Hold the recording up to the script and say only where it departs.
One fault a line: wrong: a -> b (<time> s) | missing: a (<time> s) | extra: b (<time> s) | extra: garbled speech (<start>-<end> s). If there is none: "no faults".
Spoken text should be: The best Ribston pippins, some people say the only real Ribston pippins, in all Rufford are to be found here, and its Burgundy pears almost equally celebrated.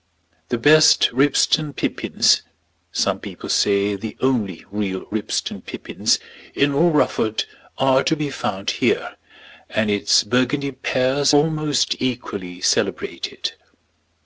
no faults